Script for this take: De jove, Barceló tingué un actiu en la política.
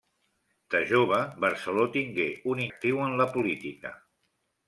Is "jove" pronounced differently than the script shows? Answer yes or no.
no